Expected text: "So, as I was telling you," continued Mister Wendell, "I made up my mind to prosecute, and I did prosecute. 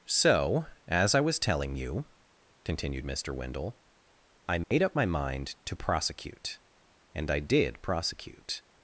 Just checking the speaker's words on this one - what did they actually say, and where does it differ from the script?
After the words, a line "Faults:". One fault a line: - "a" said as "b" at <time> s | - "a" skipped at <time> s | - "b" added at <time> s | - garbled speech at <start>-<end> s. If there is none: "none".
"So, as I was telling you," continued Mister Wendell, "I made up my mind to prosecute, and I did prosecute.
Faults:
none